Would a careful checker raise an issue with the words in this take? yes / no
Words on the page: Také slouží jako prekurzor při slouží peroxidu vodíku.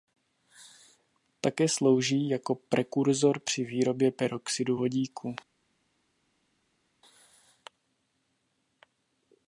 yes